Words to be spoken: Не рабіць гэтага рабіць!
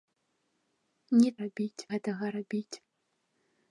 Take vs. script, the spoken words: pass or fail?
pass